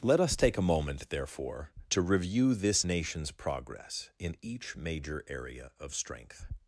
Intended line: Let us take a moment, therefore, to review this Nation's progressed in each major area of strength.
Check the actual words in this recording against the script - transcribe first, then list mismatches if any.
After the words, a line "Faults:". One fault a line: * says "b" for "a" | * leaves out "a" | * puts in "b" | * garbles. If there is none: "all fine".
Let us take a moment, therefore, to review this Nation's progress in each major area of strength.
Faults:
* says "progress" for "progressed"